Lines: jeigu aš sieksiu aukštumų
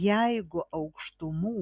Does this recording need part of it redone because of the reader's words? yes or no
yes